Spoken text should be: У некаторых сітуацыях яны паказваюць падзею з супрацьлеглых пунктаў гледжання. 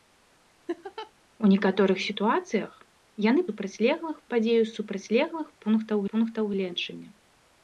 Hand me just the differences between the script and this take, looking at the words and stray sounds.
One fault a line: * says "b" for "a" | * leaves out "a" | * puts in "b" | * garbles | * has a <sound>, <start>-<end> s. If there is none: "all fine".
* has a laugh, 0.7-1.1 s
* says "супрацьлеглых" for "паказваюць"
* puts in "пунктаў"